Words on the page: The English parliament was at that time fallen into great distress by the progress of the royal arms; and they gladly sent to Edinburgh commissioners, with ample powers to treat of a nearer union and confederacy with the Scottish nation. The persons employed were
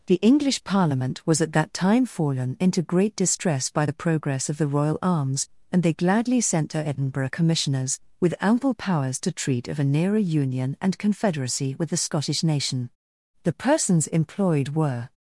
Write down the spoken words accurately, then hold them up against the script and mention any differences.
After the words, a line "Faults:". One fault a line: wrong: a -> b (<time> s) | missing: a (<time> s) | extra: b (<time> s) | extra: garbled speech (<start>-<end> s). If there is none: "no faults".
The English parliament was at that time fallen into great distress by the progress of the royal arms; and they gladly sent to Edinburgh commissioners, with ample powers to treat of a nearer union and confederacy with the Scottish nation. The persons employed were
Faults:
no faults